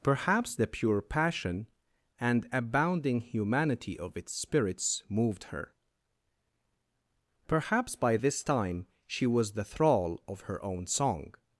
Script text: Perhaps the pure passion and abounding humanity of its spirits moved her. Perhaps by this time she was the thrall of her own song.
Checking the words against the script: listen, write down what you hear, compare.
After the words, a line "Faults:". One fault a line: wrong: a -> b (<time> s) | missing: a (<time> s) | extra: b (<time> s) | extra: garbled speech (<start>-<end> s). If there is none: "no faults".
Perhaps the pure passion and abounding humanity of its spirits moved her. Perhaps by this time she was the thrall of her own song.
Faults:
no faults